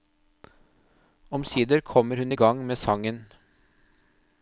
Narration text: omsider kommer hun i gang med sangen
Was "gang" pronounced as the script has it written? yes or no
yes